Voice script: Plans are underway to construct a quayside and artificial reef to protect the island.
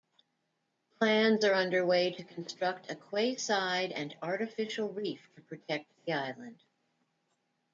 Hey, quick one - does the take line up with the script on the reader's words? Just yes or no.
yes